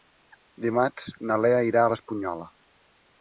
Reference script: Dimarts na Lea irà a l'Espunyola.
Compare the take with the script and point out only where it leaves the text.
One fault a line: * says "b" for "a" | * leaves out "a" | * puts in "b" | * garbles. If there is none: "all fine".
all fine